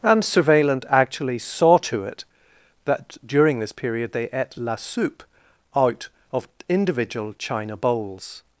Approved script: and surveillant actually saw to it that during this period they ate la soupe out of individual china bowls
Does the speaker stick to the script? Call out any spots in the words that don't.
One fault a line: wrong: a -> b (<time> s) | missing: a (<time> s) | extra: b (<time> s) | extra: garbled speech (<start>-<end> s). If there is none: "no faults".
no faults